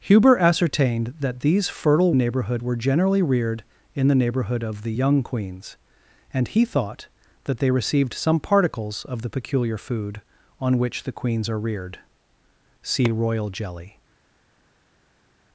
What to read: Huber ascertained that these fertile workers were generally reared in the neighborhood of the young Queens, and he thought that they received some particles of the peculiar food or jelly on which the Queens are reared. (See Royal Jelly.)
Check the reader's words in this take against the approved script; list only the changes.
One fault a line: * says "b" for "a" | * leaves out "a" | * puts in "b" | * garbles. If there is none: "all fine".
* says "neighborhood" for "workers"
* leaves out "or jelly"